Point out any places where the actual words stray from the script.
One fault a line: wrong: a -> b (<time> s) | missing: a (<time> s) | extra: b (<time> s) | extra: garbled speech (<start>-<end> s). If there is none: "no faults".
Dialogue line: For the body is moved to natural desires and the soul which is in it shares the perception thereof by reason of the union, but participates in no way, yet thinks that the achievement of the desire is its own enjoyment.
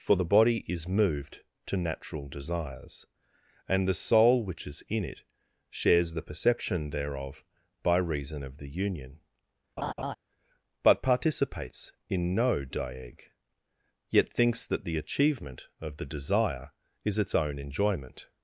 wrong: way -> dieg (12.6 s)